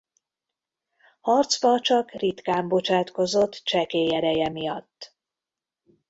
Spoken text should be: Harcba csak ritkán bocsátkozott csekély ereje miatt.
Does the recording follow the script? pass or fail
pass